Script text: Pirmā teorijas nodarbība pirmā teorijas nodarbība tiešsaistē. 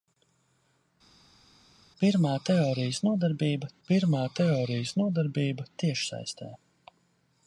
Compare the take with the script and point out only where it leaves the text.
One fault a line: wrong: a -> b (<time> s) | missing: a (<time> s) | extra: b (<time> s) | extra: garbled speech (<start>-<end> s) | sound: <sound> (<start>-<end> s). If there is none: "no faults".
no faults